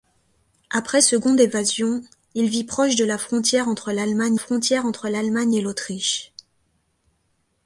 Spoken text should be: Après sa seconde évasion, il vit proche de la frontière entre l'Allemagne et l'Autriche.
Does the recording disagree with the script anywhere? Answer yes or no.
yes